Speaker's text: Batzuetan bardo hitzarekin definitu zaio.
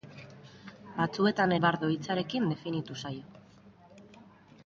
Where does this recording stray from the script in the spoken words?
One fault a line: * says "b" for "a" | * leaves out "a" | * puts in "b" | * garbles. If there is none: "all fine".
all fine